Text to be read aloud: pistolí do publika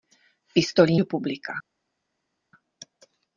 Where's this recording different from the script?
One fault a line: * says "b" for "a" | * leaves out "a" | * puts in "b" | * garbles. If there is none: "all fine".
all fine